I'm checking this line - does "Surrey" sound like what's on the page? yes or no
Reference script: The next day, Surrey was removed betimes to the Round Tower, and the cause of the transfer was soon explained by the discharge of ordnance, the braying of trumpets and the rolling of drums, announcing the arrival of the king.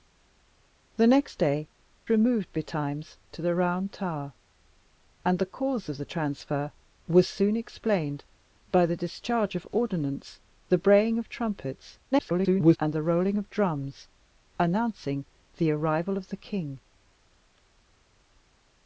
no